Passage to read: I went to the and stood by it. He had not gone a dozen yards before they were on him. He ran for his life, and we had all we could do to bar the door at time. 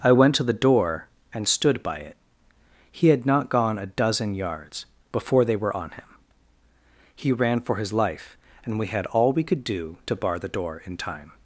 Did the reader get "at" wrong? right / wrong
wrong